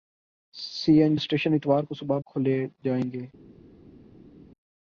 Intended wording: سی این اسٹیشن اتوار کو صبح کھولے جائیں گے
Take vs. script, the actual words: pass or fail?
pass